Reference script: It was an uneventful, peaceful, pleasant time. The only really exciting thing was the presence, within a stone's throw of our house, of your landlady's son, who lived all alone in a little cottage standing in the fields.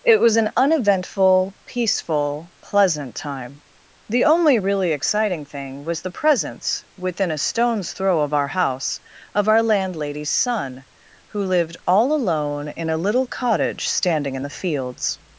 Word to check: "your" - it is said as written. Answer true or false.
false